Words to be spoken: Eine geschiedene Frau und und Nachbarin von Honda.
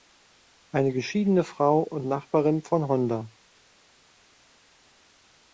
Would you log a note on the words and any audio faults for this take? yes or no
yes